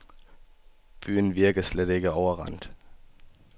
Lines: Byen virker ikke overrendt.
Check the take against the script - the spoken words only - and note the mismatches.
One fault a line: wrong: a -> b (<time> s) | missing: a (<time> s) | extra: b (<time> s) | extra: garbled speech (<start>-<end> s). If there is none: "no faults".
extra: slet (1.6 s)